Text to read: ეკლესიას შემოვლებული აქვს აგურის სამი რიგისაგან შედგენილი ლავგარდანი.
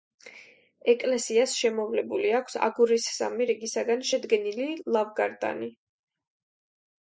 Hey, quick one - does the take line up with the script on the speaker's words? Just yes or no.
yes